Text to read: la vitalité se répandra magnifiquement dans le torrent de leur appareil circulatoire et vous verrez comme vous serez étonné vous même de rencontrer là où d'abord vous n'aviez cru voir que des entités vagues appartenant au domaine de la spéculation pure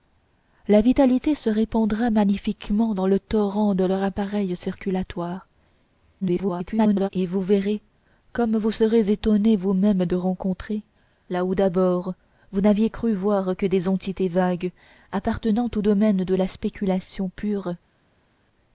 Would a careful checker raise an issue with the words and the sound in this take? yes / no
yes